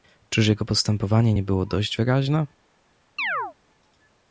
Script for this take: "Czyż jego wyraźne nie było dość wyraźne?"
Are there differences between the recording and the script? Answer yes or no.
yes